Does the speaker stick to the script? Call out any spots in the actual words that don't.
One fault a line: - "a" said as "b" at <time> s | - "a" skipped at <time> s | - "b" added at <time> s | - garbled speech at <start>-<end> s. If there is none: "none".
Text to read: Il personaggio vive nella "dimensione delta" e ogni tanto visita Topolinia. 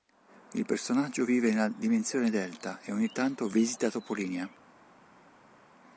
none